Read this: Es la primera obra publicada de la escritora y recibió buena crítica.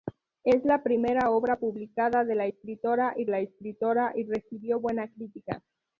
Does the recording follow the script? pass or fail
fail